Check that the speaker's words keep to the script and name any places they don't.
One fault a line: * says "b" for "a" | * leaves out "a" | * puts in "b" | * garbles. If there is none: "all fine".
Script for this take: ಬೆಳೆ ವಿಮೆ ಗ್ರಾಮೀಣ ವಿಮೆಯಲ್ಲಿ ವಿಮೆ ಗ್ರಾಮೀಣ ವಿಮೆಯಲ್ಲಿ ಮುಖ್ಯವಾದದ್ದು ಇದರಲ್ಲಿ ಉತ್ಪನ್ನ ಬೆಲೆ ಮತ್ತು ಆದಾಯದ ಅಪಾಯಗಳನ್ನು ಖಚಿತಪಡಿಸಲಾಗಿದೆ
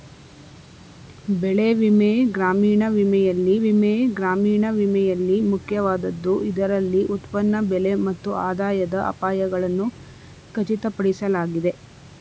all fine